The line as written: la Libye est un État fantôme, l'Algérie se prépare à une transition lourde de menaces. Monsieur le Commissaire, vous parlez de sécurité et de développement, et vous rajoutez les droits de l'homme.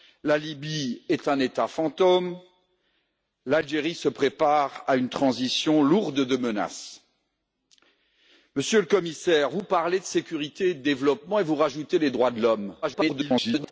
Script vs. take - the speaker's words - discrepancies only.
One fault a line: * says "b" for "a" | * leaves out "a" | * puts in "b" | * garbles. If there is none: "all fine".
* garbles